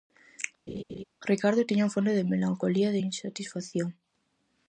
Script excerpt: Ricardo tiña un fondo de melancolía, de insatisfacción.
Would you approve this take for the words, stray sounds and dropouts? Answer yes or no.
no